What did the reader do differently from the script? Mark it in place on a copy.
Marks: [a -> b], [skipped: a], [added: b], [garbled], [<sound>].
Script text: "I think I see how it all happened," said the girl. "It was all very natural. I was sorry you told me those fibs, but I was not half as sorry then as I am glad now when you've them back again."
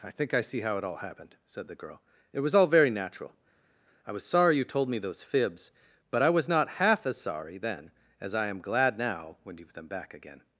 "I think I see how it all happened," said the girl. "It was all very natural. I was sorry you told me those fibs, but I was not half as sorry then as I am glad now when you've them back again."